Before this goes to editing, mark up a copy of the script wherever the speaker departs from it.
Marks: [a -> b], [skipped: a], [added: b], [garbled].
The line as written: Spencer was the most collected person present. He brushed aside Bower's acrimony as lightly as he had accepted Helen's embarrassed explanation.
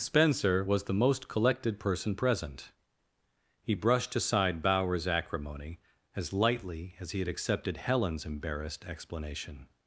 Spencer was the most collected person present. He brushed aside Bower's acrimony as lightly as he had accepted Helen's embarrassed explanation.